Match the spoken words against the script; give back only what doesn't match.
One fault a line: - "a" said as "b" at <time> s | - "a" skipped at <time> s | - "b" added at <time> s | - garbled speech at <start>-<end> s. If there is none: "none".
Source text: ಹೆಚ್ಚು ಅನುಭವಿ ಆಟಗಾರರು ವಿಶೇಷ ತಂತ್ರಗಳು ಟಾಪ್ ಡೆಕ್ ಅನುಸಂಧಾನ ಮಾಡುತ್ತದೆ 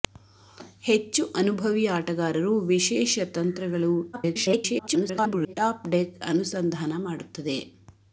- garbled speech at 4.1-5.5 s